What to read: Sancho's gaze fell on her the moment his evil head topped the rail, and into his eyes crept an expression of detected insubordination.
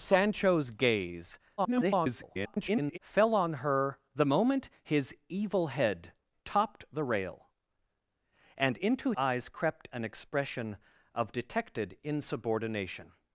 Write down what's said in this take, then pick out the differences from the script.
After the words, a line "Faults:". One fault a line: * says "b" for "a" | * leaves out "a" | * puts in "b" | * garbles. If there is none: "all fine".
Sancho's gaze [garbled] fell on her the moment his evil head topped the rail, and into eyes crept an expression of detected insubordination.
Faults:
* garbles
* leaves out "his"